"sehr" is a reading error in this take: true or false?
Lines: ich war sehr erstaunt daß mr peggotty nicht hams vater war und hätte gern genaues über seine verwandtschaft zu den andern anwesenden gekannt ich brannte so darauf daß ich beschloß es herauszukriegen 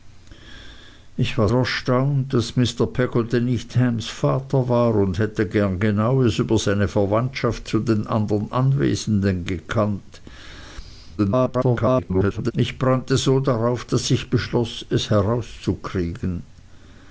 true